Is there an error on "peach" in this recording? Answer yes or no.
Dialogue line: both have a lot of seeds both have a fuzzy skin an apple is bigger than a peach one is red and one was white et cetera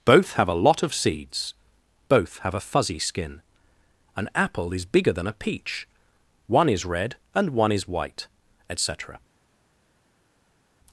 no